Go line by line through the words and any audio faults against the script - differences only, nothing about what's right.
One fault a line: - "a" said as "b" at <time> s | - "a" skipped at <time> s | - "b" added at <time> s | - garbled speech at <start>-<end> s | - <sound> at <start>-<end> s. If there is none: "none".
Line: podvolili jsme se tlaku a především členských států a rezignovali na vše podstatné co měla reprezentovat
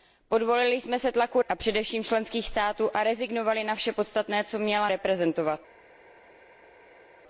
none